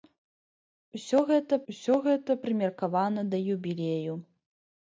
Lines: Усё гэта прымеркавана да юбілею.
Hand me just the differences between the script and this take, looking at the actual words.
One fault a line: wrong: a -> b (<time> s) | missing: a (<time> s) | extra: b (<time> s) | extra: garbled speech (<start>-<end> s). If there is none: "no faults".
extra: усё гэта (1.7 s)